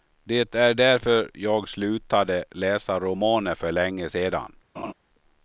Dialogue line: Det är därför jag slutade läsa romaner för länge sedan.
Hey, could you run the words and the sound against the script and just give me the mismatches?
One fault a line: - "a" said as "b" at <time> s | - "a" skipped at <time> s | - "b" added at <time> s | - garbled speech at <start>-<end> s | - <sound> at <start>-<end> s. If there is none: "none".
- laugh at 4.7-4.9 s